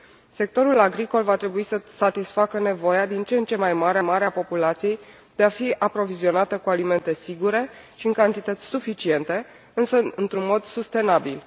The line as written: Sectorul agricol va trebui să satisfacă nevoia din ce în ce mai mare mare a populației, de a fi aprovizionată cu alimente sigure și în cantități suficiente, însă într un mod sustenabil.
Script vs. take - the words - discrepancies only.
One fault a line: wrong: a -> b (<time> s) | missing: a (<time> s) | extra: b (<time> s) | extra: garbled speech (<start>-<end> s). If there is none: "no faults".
no faults